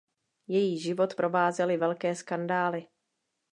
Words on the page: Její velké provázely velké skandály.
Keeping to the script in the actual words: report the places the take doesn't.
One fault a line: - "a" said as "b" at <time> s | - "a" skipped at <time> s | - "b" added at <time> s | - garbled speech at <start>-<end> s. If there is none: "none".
- "velké" said as "život" at 0.8 s